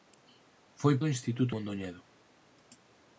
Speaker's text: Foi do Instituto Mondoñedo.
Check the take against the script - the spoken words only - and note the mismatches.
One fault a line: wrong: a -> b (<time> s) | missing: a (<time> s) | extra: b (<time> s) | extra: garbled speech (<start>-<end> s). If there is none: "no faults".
no faults